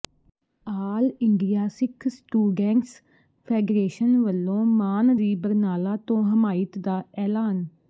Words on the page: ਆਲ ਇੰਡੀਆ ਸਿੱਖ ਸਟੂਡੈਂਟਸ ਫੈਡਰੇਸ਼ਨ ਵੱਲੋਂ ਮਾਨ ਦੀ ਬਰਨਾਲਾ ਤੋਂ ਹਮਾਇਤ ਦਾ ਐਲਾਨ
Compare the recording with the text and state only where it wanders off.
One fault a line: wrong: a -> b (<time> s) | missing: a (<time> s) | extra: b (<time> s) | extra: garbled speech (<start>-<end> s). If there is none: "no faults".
no faults